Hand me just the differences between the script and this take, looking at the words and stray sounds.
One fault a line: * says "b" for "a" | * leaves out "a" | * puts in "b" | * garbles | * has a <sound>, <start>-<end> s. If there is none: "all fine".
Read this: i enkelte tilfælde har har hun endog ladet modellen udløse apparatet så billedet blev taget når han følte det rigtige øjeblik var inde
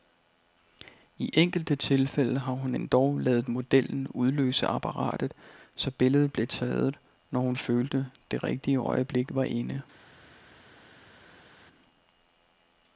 * leaves out "har"
* says "hun" for "han"